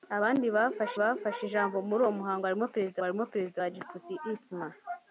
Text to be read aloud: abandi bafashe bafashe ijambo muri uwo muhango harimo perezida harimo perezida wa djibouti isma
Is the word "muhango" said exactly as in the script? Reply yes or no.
yes